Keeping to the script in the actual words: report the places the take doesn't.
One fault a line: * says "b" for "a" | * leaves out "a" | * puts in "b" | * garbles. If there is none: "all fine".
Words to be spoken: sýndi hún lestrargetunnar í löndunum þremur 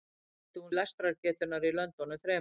all fine